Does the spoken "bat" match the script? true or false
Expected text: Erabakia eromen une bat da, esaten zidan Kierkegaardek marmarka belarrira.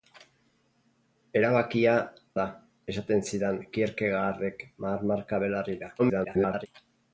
false